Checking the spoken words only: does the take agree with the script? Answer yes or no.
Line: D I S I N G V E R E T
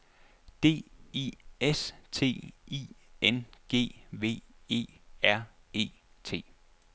no